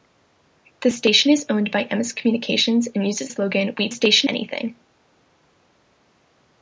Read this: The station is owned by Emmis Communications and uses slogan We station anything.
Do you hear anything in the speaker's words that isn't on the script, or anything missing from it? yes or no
no